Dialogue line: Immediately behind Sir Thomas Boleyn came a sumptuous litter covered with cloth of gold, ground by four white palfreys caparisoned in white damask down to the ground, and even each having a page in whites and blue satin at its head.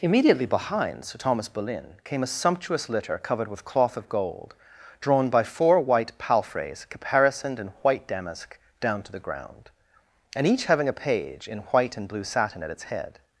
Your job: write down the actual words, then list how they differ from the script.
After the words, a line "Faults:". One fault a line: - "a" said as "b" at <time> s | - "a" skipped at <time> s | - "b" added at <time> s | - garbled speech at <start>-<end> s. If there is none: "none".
Immediately behind Sir Thomas Boleyn came a sumptuous litter covered with cloth of gold, drawn by four white palfreys caparisoned in white damask down to the ground, and each having a page in white and blue satin at its head.
Faults:
- "ground" said as "drawn" at 5.0 s
- "even" skipped at 10.5 s
- "whites" said as "white" at 11.6 s